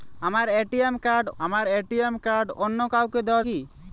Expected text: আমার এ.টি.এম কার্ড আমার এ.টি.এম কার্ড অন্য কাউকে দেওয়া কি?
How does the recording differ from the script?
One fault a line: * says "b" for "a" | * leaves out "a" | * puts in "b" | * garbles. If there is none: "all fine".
all fine